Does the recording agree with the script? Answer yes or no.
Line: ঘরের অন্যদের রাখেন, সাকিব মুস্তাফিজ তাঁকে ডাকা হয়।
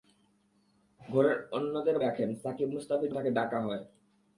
yes